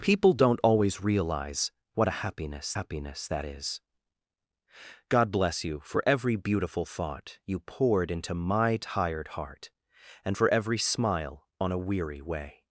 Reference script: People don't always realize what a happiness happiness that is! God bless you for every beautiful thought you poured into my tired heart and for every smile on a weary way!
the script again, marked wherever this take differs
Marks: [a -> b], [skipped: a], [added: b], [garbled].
People don't always realize what a happiness happiness that is! God bless you for every beautiful thought you poured into my tired heart and for every smile on a weary way!